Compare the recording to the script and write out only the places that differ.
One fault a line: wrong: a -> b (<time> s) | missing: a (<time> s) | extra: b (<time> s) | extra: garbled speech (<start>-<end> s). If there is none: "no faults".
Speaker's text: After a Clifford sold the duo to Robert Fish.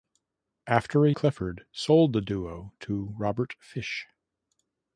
no faults